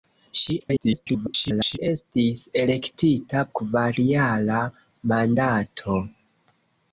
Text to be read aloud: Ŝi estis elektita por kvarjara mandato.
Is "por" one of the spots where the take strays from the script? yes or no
yes